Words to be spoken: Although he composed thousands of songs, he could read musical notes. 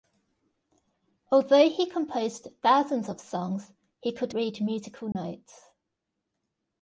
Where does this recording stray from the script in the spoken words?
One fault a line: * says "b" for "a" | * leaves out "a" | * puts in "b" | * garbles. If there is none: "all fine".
all fine